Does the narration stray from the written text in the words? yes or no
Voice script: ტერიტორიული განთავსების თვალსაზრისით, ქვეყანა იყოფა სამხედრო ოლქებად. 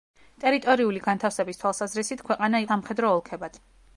yes